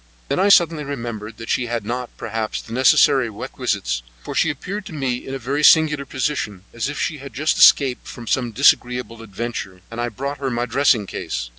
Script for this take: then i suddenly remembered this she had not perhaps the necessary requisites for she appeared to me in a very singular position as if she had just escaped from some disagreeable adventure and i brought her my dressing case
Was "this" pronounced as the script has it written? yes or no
no